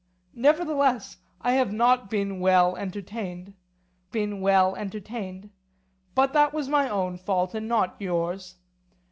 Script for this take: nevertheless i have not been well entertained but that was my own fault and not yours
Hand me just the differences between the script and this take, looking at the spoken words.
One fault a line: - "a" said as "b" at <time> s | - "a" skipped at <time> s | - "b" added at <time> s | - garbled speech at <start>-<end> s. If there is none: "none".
- "been well entertained" added at 4.1 s